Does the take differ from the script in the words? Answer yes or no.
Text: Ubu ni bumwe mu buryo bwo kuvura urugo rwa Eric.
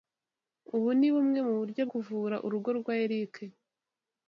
yes